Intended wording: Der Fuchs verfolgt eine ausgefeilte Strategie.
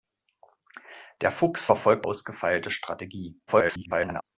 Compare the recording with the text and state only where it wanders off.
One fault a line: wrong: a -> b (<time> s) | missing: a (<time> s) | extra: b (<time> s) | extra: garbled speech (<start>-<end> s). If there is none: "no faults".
missing: eine (2.1 s)
extra: garbled speech (3.5-4.2 s)